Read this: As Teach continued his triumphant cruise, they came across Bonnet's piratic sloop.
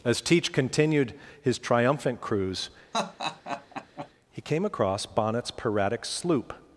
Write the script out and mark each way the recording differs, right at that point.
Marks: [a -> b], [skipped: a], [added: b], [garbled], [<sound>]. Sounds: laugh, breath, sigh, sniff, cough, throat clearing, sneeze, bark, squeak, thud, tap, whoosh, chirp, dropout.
As Teach continued his triumphant cruise, [laugh] [they -> he] came across Bonnet's piratic sloop.